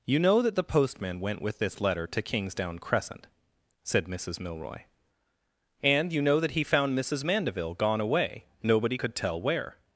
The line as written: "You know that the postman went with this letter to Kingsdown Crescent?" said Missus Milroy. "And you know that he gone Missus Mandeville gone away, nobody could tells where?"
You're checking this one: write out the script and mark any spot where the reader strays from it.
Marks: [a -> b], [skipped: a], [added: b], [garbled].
"You know that the postman went with this letter to Kingsdown Crescent?" said Missus Milroy. "And you know that he [gone -> found] Missus Mandeville gone away, nobody could [tells -> tell] where?"